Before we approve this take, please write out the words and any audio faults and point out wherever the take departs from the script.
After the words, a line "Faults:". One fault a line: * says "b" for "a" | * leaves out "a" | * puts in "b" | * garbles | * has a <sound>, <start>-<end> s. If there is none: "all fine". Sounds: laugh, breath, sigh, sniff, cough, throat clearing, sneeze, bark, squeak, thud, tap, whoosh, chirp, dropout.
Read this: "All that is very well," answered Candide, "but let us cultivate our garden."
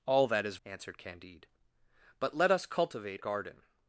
"All that is," answered Candide, "but let us cultivate garden."
Faults:
* leaves out "very well"
* leaves out "our"